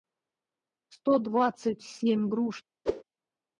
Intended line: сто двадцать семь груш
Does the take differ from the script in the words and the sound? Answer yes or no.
yes